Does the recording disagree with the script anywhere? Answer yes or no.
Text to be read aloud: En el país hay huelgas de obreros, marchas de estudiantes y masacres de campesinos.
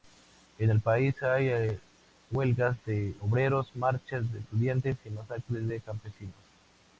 no